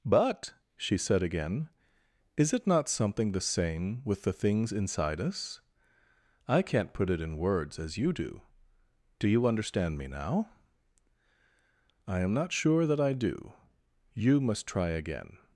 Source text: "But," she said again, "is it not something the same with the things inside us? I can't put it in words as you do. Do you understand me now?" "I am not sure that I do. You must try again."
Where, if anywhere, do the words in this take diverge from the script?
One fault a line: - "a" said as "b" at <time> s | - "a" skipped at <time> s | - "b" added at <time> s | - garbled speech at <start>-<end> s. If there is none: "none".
none